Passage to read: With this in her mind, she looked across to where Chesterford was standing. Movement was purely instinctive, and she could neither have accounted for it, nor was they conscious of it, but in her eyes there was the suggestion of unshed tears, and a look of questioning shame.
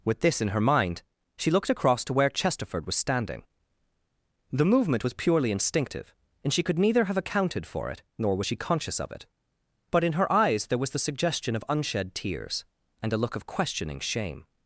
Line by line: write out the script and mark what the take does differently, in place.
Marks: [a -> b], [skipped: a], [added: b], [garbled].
With this in her mind, she looked across to where Chesterford was standing. [added: The] Movement was purely instinctive, and she could neither have accounted for it, nor was [they -> she] conscious of it, but in her eyes there was the suggestion of unshed tears, and a look of questioning shame.